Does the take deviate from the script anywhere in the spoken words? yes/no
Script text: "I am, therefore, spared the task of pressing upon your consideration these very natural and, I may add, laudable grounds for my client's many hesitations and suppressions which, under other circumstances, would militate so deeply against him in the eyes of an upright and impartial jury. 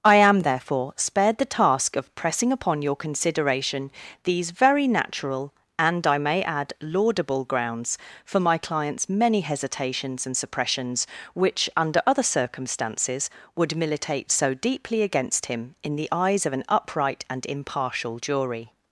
no